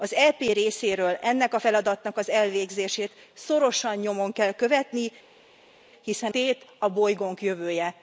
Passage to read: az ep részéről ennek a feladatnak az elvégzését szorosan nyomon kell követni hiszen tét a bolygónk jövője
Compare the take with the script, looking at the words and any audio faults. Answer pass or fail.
pass